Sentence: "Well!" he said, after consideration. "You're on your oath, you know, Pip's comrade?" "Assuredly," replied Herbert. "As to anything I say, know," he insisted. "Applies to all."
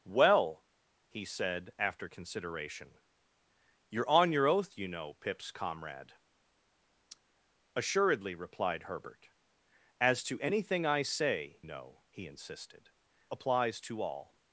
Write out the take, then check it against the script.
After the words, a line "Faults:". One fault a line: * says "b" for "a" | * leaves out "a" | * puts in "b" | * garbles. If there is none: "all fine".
"Well!" he said, after consideration. "You're on your oath, you know, Pip's comrade?" "Assuredly," replied Herbert. "As to anything I say, know," he insisted. "Applies to all."
Faults:
all fine